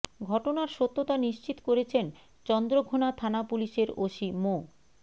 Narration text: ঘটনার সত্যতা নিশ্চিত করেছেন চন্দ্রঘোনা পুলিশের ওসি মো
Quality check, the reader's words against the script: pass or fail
fail